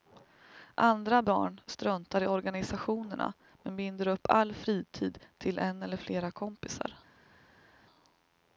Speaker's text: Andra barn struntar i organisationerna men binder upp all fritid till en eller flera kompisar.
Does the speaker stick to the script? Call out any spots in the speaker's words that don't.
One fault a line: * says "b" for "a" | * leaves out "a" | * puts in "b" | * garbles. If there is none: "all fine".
all fine